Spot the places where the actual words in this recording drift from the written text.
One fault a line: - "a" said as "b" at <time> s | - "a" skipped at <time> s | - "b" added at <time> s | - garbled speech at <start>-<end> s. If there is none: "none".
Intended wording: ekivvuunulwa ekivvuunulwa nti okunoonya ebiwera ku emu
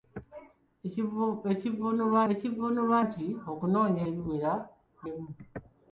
none